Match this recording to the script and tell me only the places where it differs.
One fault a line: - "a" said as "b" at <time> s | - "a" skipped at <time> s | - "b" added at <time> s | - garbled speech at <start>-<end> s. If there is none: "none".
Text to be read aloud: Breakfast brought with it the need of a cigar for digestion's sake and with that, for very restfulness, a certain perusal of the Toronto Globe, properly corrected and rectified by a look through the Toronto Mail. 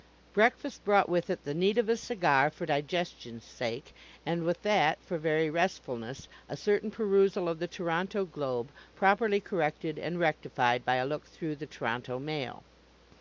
none